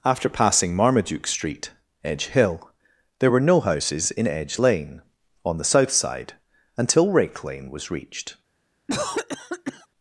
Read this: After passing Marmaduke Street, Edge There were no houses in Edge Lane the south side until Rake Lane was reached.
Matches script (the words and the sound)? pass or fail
fail